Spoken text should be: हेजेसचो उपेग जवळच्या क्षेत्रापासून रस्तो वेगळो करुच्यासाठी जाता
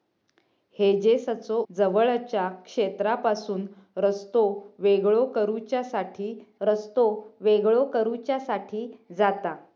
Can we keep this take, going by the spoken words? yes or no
no